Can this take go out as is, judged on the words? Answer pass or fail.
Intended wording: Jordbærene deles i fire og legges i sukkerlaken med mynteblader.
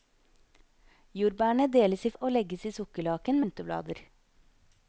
fail